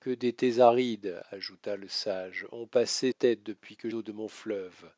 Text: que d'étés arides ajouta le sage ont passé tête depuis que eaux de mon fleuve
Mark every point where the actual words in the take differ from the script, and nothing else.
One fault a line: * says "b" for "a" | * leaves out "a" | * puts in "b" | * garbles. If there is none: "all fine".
all fine